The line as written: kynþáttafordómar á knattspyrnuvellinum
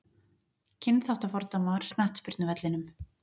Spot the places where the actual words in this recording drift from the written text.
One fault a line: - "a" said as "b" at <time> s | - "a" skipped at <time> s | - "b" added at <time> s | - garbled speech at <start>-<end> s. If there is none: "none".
none